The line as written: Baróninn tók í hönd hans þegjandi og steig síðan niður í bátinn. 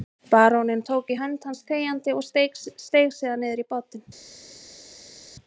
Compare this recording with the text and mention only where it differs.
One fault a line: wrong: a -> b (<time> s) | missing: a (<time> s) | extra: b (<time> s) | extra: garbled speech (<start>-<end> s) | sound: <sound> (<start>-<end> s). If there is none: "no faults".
no faults